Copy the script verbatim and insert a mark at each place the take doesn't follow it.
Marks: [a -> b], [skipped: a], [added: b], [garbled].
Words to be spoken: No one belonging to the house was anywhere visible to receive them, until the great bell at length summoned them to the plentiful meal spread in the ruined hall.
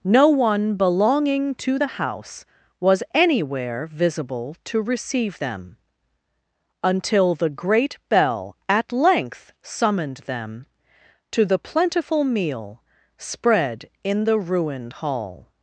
No one belonging to the house was anywhere visible to receive them, until the great bell at length summoned them to the plentiful meal spread in the ruined hall.